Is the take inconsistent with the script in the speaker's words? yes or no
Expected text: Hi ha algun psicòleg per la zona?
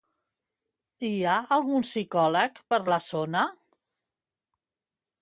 no